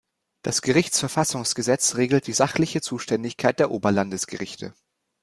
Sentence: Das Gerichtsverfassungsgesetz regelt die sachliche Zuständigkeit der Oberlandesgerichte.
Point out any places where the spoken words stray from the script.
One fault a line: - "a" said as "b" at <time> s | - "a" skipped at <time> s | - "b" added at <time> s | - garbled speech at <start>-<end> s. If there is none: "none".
none